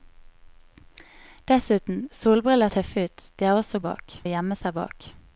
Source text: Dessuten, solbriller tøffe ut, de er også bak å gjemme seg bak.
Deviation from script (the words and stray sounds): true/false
false